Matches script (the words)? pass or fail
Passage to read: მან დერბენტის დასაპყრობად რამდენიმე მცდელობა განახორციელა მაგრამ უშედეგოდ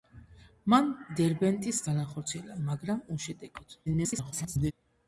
fail